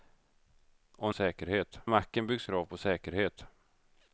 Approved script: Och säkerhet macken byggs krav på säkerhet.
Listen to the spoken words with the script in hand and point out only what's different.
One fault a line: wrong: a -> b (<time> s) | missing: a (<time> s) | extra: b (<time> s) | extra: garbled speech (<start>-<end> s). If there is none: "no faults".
no faults